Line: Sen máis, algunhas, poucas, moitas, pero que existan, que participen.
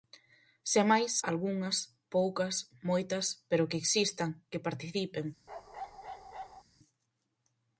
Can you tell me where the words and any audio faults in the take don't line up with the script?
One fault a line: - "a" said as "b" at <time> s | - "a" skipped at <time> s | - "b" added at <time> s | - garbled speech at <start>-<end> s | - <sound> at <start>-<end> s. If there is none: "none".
- bark at 5.5-6.6 s